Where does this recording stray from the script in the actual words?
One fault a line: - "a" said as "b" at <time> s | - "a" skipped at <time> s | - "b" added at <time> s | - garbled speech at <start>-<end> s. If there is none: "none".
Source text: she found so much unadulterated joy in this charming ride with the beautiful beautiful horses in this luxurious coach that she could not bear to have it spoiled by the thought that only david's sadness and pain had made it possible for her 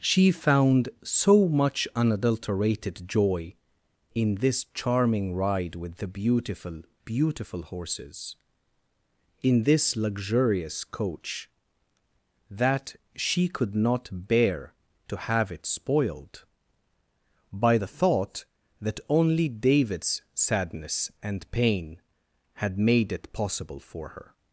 none